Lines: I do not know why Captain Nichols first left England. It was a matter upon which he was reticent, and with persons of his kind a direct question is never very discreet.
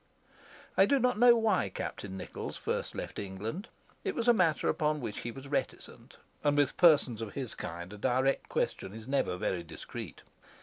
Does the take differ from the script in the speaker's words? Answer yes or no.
no